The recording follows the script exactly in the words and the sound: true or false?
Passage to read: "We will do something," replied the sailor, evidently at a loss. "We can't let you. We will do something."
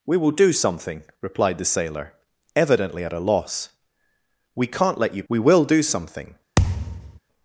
false